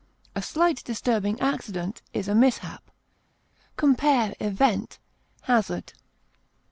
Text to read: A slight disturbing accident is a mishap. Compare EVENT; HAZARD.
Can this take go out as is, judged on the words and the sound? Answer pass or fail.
pass